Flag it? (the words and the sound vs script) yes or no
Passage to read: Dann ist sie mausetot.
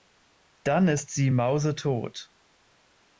no